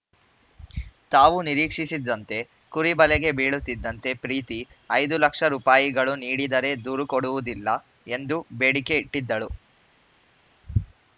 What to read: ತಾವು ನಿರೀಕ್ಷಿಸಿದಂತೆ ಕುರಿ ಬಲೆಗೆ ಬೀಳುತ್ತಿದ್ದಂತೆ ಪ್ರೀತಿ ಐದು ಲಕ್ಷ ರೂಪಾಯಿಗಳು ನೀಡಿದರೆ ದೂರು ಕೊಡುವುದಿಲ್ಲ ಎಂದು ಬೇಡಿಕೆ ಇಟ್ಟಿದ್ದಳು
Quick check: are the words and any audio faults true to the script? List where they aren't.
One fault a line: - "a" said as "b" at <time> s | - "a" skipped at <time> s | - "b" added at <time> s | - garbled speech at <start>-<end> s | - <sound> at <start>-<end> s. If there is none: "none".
none